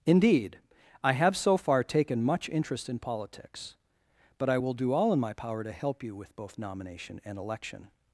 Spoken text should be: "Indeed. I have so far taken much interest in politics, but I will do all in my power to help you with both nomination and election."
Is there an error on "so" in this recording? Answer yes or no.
no